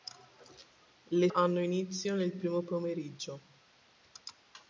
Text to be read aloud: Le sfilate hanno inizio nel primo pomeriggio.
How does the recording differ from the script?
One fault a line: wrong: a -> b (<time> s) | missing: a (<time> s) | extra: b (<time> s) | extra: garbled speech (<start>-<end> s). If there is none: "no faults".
missing: sfilate (1.3 s)